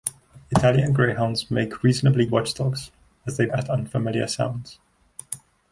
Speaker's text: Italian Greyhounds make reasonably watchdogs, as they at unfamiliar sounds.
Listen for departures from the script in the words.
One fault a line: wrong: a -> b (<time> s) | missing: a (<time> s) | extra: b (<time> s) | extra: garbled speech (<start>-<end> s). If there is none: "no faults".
no faults